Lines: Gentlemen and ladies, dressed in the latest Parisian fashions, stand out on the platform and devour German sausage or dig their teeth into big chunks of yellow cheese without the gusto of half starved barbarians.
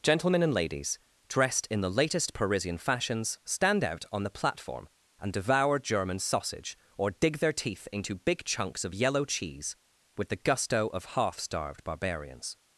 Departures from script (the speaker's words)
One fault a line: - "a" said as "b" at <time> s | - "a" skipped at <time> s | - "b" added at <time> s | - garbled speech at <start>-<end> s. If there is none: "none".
- "without" said as "with" at 10.2 s